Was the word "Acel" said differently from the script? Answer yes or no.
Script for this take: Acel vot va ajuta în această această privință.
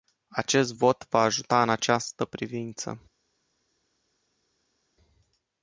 yes